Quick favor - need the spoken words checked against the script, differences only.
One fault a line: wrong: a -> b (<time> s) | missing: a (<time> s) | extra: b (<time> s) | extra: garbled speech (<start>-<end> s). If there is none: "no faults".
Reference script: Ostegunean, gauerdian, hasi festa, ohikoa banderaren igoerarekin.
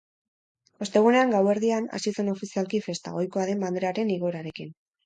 extra: zen ofizialki (2.1 s)
extra: den (3.5 s)